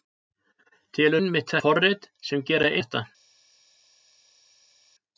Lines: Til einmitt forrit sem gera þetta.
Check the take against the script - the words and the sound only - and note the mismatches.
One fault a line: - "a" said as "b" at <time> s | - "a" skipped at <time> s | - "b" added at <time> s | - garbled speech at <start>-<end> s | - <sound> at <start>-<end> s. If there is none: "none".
none